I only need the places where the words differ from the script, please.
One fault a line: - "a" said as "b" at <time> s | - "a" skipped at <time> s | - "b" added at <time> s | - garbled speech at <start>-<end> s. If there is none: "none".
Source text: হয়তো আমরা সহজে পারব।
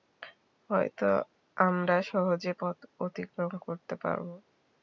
- "পথ অতিক্রম করতে" added at 2.6 s